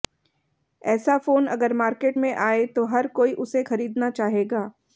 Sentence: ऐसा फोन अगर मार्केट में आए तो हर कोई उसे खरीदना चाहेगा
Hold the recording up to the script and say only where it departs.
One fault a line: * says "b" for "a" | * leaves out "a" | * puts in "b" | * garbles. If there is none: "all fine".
all fine